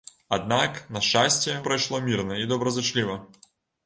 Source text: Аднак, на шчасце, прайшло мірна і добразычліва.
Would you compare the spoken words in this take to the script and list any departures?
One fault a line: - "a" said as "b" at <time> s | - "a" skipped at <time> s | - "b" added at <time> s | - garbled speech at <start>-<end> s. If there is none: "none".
none